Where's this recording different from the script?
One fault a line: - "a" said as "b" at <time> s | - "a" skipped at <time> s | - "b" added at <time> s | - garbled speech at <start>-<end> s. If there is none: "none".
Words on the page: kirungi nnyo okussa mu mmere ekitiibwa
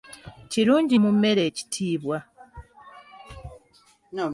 - "nnyo okussa" skipped at 0.9 s